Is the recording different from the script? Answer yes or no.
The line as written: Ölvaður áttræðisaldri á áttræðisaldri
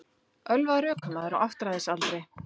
yes